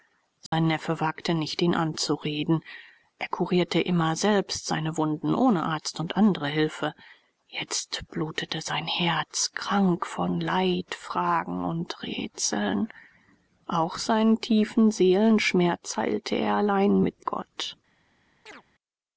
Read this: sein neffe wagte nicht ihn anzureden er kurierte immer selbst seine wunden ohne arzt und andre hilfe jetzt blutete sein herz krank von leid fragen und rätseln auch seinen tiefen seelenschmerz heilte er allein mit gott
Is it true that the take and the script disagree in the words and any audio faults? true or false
true